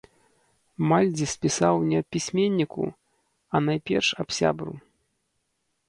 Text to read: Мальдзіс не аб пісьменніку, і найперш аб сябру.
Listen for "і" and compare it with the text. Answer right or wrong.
wrong